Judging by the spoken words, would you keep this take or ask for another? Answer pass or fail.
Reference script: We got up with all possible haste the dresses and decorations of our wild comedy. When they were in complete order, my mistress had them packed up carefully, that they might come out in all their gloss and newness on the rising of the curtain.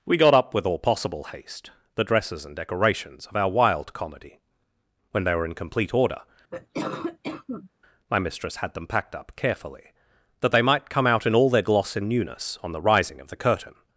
pass